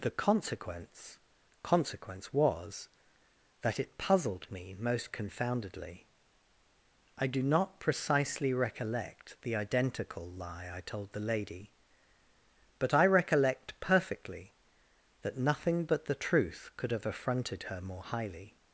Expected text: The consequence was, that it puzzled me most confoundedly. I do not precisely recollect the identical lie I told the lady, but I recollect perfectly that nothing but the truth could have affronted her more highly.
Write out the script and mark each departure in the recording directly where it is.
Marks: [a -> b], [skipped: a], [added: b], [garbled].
The consequence [added: consequence] was, that it puzzled me most confoundedly. I do not precisely recollect the identical lie I told the lady, but I recollect perfectly that nothing but the truth could have affronted her more highly.